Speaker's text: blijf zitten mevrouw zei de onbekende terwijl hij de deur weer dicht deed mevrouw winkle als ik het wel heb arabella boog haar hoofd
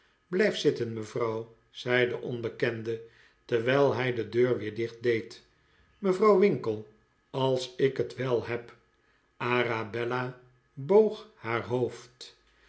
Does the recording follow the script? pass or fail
pass